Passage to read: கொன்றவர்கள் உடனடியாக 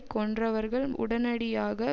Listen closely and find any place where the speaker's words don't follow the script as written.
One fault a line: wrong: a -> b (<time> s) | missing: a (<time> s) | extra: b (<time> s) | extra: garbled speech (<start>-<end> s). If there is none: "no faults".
no faults